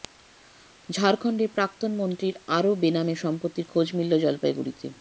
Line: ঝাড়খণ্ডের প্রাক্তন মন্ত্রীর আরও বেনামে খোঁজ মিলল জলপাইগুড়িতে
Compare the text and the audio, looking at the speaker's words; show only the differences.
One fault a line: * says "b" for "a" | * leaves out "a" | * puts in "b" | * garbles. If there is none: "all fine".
* puts in "সম্পত্তির"